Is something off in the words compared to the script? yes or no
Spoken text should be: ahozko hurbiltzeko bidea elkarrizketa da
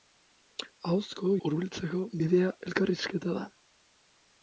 no